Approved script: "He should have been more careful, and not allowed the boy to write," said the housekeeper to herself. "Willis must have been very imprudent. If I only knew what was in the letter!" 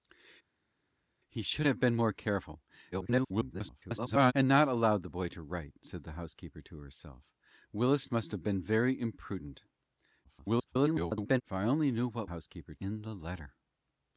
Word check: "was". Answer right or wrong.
wrong